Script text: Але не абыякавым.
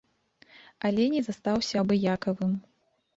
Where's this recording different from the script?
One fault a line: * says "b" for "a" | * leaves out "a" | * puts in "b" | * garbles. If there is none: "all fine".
* puts in "застаўся"